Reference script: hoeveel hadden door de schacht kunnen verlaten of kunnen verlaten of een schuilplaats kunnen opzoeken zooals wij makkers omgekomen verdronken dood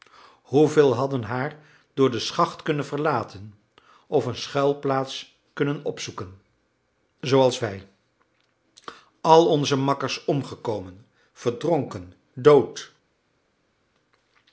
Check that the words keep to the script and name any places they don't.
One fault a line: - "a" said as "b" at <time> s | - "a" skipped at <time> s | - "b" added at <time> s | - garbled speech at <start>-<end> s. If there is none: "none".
- "haar" added at 1.2 s
- "kunnen verlaten of" skipped at 4.3 s
- "al onze" added at 9.2 s